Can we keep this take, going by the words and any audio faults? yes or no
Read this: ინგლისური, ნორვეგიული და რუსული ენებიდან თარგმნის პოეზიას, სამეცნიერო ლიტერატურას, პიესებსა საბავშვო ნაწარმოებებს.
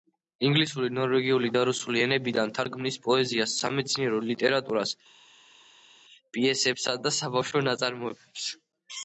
no